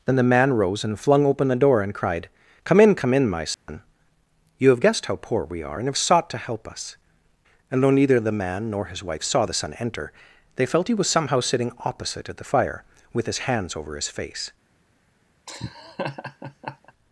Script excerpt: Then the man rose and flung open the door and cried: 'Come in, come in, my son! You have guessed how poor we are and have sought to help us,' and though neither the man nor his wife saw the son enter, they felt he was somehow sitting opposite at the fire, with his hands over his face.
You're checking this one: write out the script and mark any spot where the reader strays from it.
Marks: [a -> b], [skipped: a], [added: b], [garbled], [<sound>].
Then the man rose and flung open the door and cried: 'Come in, come in, my son! [dropout] You have guessed how poor we are and have sought to help us,' and though neither the man nor his wife saw the son enter, they felt he was somehow sitting opposite at the fire, with his hands over his face. [laugh]